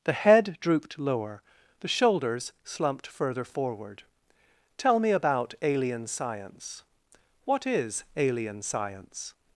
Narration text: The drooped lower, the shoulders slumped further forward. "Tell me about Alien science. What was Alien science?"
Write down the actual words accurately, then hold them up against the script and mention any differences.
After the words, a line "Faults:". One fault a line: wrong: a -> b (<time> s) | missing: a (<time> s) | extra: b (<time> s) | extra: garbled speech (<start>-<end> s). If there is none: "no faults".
The head drooped lower, the shoulders slumped further forward. "Tell me about Alien science. What is Alien science?"
Faults:
extra: head (0.1 s)
wrong: was -> is (7.7 s)